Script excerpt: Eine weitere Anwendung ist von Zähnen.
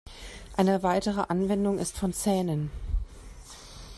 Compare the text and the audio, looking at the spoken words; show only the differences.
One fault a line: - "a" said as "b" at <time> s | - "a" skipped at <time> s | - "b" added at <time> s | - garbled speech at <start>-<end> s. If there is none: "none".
none